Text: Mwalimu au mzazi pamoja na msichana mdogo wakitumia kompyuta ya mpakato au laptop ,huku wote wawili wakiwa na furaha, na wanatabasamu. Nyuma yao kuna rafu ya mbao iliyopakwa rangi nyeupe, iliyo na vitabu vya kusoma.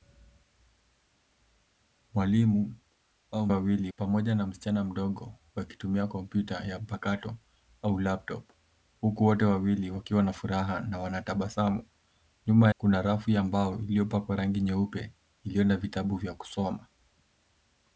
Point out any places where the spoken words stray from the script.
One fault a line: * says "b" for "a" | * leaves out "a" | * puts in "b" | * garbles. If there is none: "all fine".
* says "wawili" for "mzazi"
* leaves out "yao"